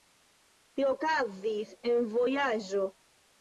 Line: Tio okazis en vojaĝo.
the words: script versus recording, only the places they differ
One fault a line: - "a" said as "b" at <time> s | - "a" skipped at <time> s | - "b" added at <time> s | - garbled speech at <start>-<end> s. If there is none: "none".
none